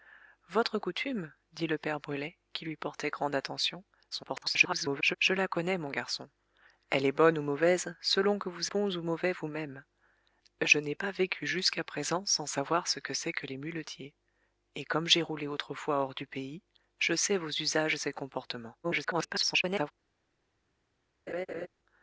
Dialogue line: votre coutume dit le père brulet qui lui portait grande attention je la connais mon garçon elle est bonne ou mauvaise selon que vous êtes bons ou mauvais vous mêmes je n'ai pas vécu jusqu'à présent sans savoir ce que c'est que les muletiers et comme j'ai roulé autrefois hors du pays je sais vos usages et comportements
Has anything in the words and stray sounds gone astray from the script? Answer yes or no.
yes